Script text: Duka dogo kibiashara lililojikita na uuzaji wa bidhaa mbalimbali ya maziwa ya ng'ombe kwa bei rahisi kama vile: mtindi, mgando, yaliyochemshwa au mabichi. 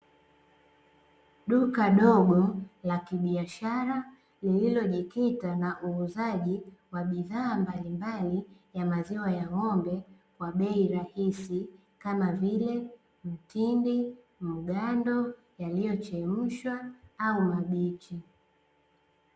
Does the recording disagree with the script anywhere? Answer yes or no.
yes